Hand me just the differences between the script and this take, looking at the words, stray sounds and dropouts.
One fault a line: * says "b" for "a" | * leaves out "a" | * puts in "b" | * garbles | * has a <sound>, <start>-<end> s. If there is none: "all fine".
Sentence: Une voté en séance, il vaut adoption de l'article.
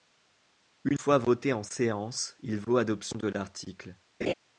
* puts in "fois"
* has a laugh, 4.2-4.3 s